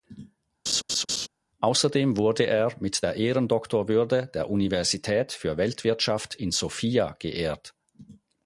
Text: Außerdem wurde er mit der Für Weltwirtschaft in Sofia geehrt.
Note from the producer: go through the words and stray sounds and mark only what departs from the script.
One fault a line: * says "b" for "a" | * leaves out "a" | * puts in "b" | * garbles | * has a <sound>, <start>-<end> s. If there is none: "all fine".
* has a laugh, 0.7-1.3 s
* puts in "Ehrendoktorwürde der Universität"